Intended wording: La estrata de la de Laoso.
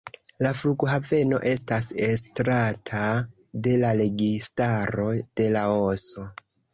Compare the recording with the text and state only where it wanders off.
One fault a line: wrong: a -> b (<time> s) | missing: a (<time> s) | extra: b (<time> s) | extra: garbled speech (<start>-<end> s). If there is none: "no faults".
extra: flughaveno estas (0.6 s)
extra: registaro (4.0 s)